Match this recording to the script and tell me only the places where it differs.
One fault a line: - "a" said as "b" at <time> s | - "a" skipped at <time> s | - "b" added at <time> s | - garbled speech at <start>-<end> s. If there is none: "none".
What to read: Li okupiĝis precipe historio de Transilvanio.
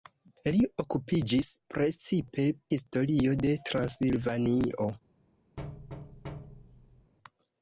none